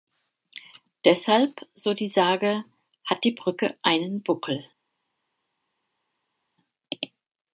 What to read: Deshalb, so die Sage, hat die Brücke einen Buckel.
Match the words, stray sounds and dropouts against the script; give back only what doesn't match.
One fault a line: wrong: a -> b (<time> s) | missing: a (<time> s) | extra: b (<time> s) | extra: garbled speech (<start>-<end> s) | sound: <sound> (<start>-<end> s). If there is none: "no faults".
no faults